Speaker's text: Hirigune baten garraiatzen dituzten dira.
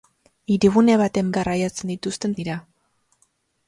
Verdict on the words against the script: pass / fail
pass